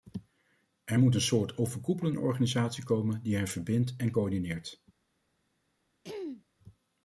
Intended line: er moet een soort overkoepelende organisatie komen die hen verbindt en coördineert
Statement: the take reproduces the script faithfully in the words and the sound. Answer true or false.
false